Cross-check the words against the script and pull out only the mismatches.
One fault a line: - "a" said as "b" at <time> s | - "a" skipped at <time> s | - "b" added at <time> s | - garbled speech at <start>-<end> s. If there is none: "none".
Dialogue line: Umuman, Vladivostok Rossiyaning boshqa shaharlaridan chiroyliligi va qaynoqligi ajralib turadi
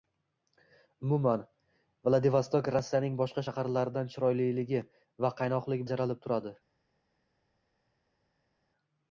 none